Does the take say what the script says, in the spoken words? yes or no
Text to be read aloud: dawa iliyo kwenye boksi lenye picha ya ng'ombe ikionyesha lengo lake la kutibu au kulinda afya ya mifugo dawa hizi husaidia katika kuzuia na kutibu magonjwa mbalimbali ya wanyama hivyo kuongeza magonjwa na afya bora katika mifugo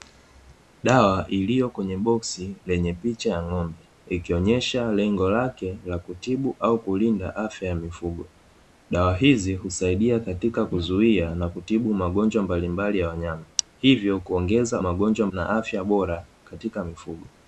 yes